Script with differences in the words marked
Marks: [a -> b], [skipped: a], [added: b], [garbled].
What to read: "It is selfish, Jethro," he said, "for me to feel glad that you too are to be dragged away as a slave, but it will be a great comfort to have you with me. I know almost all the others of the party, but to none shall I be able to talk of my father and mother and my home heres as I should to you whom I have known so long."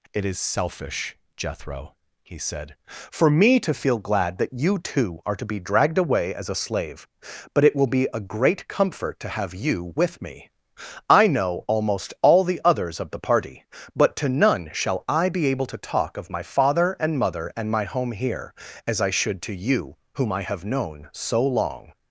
"It is selfish, Jethro," he said, "for me to feel glad that you too are to be dragged away as a slave, but it will be a great comfort to have you with me. I know almost all the others of the party, but to none shall I be able to talk of my father and mother and my home [heres -> here] as I should to you whom I have known so long."